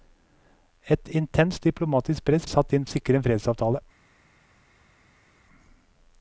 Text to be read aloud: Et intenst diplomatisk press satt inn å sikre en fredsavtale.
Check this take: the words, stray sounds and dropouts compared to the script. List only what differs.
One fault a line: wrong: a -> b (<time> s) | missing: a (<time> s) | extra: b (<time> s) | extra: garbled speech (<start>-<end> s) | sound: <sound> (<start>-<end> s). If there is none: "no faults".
no faults